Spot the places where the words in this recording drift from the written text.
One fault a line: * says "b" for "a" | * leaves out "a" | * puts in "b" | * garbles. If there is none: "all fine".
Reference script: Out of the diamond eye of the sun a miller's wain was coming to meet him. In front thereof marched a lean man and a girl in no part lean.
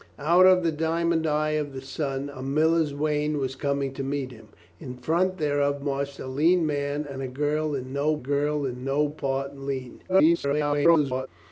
* puts in "girl in no"
* garbles